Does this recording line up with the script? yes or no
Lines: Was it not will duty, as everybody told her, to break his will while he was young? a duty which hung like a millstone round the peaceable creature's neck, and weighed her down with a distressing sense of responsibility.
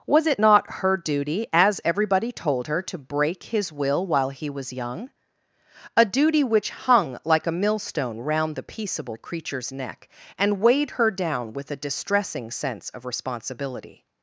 no